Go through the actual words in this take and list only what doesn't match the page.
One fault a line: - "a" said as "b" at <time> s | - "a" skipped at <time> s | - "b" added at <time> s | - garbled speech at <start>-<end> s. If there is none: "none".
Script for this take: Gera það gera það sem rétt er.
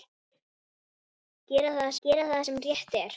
none